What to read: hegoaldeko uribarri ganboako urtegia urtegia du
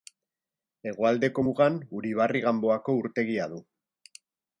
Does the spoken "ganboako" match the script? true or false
true